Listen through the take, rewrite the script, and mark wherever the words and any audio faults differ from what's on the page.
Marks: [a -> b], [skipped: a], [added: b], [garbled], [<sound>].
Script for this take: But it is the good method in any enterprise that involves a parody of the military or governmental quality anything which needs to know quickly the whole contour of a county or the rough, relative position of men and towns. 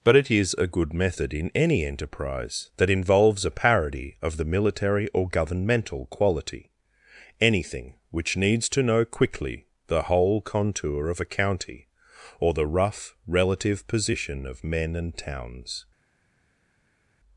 But it is [the -> a] good method in any enterprise that involves a parody of the military or governmental quality anything which needs to know quickly the whole contour of a county or the rough, relative position of men and towns.